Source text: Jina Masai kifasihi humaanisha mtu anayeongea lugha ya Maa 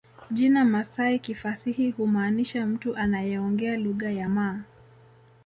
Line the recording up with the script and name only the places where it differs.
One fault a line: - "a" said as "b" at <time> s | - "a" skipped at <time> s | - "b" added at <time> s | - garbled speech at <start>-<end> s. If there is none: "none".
none